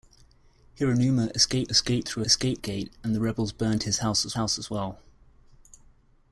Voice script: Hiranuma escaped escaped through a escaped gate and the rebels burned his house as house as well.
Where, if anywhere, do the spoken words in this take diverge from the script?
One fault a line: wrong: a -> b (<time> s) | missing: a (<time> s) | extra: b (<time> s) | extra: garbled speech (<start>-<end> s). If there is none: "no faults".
no faults